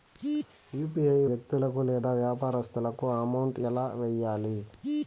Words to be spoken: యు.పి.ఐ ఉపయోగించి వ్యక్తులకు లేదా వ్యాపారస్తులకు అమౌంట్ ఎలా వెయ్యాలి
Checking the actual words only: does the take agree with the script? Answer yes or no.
no